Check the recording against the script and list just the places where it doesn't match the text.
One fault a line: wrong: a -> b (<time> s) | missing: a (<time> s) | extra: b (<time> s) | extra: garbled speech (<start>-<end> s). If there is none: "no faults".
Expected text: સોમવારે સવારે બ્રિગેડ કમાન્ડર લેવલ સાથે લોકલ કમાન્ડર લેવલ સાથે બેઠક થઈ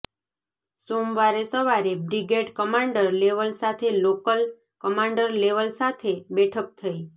no faults